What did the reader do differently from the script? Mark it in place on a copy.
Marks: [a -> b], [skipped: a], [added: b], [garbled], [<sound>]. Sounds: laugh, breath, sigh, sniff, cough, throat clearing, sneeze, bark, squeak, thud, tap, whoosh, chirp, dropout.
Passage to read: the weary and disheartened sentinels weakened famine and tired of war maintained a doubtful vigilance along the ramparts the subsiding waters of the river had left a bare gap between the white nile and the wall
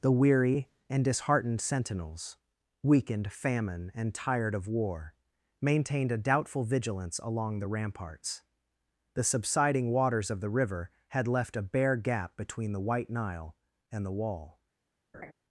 the weary and disheartened sentinels weakened famine and tired of war maintained a doubtful vigilance along the ramparts the subsiding waters of the river had left a bare gap between the white nile and the wall [laugh]